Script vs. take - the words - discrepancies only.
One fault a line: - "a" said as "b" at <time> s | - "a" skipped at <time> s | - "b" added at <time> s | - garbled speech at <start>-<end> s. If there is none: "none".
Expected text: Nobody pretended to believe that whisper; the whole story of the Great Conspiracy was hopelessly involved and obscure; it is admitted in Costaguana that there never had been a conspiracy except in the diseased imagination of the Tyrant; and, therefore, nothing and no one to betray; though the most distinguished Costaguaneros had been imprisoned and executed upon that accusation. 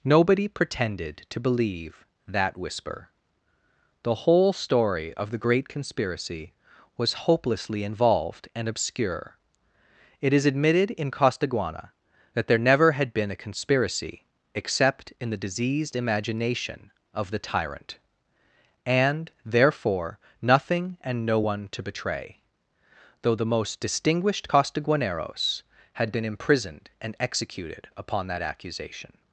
none